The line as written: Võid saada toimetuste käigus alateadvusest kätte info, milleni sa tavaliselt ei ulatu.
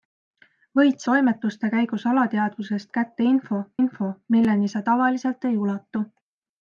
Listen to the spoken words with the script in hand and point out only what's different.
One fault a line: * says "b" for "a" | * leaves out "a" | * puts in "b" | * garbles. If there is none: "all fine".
* leaves out "saada"
* puts in "info"